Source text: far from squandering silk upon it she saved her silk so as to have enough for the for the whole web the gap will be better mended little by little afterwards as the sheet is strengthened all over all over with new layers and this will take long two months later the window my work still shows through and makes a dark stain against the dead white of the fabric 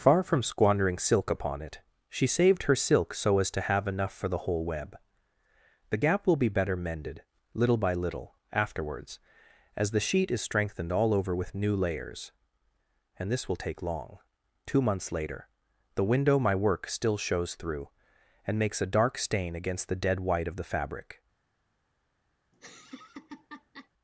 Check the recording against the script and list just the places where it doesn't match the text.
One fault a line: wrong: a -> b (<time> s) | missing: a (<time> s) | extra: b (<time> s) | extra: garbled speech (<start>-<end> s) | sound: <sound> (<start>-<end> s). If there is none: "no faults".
missing: for the (4.5 s)
missing: all over (11.4 s)
sound: laugh (22.5-23.9 s)